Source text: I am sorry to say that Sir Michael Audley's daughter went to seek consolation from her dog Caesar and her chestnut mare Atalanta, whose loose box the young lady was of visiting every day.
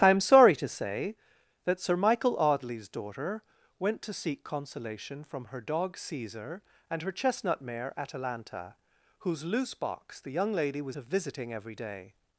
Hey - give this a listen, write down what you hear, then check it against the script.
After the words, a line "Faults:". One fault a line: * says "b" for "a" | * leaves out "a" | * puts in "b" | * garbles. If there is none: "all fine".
I am sorry to say that Sir Michael Audley's daughter went to seek consolation from her dog Caesar and her chestnut mare Atalanta, whose loose box the young lady was of visiting every day.
Faults:
all fine